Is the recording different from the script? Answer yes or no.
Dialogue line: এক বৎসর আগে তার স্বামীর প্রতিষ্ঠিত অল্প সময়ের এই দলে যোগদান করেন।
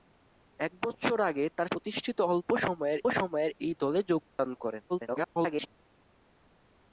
yes